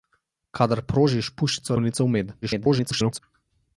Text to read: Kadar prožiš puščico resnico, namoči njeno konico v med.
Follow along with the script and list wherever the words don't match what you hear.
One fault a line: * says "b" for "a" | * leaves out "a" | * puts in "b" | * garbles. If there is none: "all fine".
* leaves out "resnico namoči njeno"
* garbles